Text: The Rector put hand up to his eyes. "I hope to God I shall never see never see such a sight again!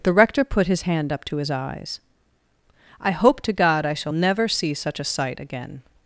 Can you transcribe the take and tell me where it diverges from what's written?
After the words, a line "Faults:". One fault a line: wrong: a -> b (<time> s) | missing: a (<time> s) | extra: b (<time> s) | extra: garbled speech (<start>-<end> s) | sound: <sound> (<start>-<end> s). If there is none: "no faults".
The Rector put his hand up to his eyes. "I hope to God I shall never see such a sight again!
Faults:
extra: his (0.7 s)
missing: never see (4.7 s)